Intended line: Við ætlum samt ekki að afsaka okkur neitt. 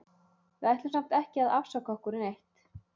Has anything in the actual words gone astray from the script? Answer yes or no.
no